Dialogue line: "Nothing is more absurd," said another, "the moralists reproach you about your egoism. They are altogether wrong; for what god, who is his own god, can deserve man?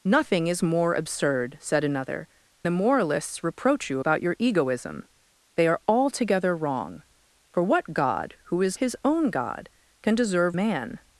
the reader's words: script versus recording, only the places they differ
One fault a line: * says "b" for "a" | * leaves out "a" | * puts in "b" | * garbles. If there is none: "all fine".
all fine